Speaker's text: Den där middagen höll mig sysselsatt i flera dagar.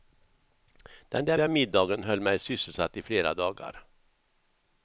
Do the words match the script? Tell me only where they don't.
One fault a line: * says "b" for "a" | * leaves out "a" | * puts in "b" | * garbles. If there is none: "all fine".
* puts in "där"